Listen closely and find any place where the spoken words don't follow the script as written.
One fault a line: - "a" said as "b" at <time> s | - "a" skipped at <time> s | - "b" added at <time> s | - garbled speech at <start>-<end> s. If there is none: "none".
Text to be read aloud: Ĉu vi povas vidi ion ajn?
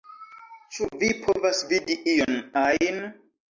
none